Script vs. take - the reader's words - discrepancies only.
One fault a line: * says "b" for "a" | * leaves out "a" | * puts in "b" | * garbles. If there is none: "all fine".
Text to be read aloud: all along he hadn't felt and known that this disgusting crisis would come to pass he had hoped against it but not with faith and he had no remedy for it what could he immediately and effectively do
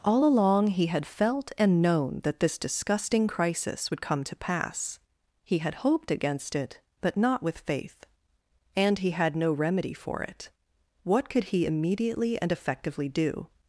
* says "had" for "hadn't"